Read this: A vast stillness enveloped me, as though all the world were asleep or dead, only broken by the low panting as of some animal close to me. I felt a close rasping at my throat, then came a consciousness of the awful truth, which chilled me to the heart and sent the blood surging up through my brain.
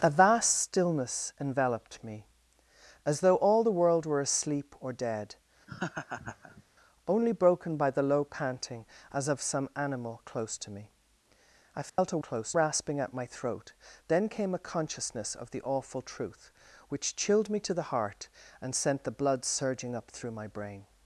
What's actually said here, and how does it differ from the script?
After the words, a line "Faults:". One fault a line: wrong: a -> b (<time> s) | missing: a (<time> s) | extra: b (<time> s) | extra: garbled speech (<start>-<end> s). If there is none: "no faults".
A vast stillness enveloped me, as though all the world were asleep or dead, only broken by the low panting as of some animal close to me. I felt a close rasping at my throat, then came a consciousness of the awful truth, which chilled me to the heart and sent the blood surging up through my brain.
Faults:
no faults